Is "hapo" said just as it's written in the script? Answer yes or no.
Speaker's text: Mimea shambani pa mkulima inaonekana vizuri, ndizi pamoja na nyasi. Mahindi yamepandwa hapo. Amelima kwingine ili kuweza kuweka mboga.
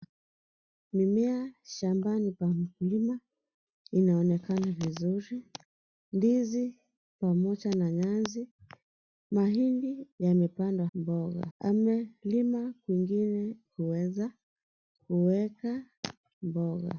no